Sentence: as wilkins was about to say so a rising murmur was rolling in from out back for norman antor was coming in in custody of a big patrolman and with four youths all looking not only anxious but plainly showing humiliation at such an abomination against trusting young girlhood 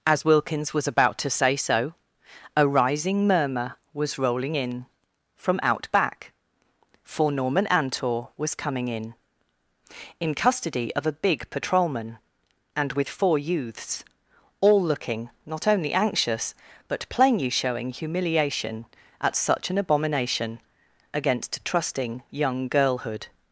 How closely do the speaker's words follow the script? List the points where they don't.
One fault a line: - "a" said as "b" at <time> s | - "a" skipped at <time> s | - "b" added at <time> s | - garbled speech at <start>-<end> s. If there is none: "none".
none